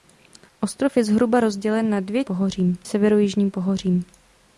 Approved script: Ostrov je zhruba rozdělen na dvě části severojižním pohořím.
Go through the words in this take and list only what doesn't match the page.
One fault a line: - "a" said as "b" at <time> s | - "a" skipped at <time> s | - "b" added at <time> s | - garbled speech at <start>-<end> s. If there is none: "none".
- "části" said as "pohořím" at 2.2 s